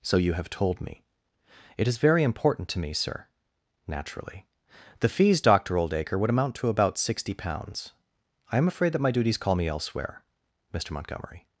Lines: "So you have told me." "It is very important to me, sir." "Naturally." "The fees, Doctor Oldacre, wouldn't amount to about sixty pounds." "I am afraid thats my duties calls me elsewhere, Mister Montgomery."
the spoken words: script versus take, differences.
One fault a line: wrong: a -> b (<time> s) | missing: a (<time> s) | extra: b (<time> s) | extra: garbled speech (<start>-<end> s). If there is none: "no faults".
wrong: wouldn't -> would (6.2 s)
wrong: thats -> that (8.9 s)
wrong: calls -> call (9.4 s)